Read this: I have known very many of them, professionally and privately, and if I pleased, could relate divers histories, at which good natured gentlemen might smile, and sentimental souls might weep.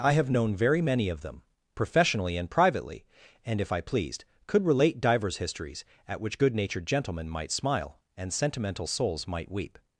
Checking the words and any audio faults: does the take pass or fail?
pass